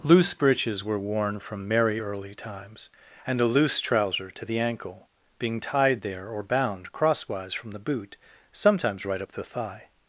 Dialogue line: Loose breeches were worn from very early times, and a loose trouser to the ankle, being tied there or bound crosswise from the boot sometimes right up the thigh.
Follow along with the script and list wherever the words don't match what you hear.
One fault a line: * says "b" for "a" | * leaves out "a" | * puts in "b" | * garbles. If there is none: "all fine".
* says "merry" for "very"